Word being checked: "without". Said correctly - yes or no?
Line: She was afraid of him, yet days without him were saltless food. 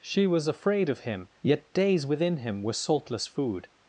no